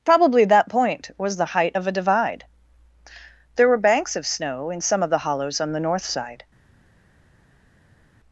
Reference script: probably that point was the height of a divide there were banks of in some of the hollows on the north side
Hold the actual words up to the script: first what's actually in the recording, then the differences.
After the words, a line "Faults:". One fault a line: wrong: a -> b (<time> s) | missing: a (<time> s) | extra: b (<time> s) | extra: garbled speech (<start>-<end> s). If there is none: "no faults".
probably that point was the height of a divide there were banks of snow in some of the hollows on the north side
Faults:
extra: snow (4.3 s)